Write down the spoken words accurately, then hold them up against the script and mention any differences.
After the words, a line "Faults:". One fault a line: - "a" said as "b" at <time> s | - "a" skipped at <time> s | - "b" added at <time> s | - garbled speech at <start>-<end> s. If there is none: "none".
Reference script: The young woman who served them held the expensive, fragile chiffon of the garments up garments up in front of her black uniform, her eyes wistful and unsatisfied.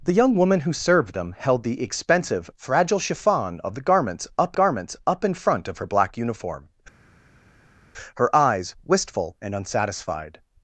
The young woman who served them held the expensive, fragile chiffon of the garments up garments up in front of her black uniform, her eyes wistful and unsatisfied.
Faults:
none